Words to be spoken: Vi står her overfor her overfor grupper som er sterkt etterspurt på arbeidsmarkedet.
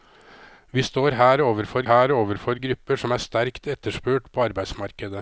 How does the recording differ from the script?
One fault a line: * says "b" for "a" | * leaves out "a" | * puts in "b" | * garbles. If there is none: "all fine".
all fine